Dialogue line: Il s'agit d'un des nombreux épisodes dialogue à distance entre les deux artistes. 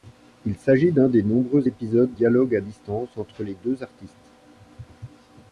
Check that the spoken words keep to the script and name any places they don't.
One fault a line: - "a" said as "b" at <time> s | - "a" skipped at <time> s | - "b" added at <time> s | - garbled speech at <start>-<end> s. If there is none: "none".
none